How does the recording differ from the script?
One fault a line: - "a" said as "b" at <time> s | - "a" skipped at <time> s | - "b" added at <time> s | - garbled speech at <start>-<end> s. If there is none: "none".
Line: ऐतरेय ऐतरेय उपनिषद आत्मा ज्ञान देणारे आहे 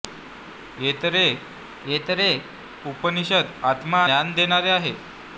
none